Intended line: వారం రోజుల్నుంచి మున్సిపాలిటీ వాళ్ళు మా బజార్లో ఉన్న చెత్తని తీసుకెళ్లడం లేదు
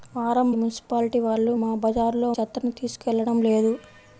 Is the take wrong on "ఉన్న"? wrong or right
wrong